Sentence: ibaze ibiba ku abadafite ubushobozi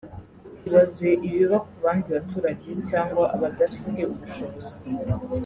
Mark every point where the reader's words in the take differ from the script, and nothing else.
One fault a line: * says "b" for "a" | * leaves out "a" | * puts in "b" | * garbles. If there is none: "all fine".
* puts in "bandi baturage cyangwa"